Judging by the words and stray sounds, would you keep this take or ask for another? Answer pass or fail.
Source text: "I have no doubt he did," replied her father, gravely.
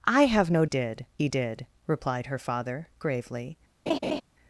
fail